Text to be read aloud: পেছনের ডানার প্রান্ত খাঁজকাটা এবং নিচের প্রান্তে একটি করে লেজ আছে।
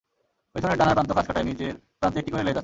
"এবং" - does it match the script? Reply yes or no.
no